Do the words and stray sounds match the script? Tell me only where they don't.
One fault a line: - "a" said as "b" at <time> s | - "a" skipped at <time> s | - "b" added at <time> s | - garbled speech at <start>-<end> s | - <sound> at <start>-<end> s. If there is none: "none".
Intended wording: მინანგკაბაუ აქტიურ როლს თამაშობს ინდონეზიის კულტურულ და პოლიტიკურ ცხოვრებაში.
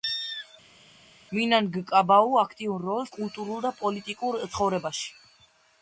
- "თამაშობს ინდონეზიის" skipped at 3.1 s